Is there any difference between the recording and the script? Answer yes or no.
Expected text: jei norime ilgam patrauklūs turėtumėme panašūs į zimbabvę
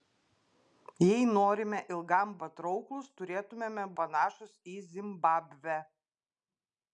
no